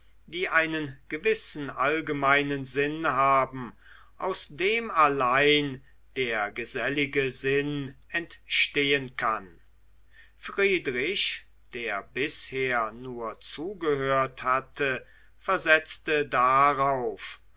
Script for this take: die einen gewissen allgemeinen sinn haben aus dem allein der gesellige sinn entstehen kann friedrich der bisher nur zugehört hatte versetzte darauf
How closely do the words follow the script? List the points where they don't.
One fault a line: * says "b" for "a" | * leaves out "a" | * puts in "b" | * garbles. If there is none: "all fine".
all fine